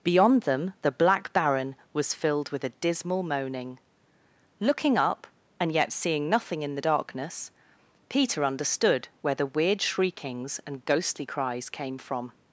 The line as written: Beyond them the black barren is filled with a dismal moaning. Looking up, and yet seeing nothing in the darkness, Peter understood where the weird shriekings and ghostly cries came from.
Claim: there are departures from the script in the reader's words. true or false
true